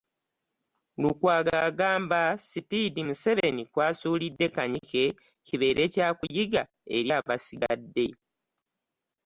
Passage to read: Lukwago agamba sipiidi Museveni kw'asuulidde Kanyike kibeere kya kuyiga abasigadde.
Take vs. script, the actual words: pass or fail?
fail